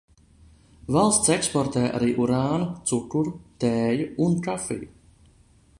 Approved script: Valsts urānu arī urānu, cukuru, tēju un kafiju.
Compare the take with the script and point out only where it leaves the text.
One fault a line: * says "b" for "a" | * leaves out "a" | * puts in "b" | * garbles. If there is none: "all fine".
* says "eksportē" for "urānu"